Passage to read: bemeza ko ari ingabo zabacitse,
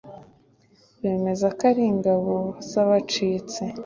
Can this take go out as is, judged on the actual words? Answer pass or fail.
pass